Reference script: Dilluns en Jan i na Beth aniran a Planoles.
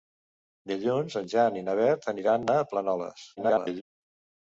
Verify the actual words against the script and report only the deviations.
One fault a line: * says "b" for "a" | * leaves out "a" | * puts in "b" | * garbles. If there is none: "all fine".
* garbles